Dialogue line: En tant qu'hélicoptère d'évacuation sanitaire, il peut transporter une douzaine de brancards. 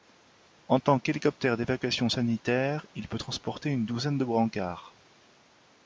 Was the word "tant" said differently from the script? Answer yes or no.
no